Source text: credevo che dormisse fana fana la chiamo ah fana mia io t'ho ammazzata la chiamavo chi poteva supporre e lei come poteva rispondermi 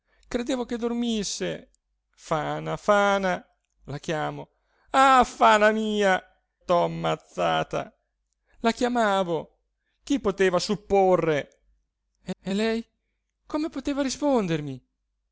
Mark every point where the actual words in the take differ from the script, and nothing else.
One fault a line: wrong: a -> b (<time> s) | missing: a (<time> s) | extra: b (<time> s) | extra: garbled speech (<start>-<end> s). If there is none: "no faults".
missing: io (6.2 s)
extra: e (12.4 s)